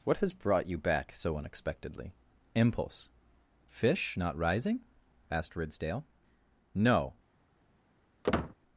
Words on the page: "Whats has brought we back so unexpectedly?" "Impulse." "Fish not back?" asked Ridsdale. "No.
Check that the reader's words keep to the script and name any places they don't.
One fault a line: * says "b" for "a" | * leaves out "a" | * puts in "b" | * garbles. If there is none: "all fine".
* says "What" for "Whats"
* says "you" for "we"
* says "rising" for "back"